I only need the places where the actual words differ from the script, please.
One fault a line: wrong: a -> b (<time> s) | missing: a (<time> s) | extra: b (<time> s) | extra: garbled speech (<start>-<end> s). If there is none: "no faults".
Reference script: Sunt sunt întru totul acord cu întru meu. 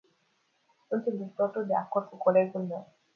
missing: sunt (1.1 s)
extra: de (1.6 s)
wrong: întru -> colegul (2.1 s)